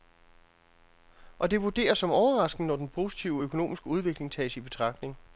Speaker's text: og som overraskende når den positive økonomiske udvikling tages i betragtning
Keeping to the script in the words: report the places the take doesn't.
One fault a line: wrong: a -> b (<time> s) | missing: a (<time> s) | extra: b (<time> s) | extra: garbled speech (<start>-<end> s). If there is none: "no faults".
extra: det vurderes (1.5 s)